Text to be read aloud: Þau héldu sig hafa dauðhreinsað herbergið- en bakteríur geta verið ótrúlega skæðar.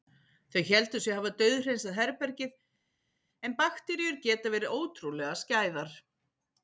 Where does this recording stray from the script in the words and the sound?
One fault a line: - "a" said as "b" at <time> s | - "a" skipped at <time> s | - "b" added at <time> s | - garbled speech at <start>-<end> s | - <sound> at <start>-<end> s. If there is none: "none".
none